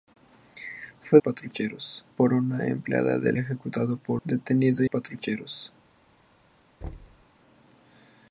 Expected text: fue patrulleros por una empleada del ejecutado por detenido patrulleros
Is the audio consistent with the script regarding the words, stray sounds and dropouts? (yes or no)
no